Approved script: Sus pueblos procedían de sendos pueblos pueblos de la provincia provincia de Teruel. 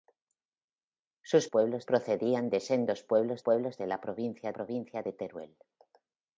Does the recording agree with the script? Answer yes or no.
yes